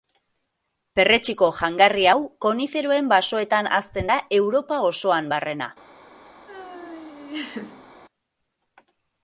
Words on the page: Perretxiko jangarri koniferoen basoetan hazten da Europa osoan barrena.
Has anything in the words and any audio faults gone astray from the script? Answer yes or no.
yes